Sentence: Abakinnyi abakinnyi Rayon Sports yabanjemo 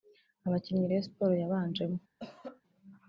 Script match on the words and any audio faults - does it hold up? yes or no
no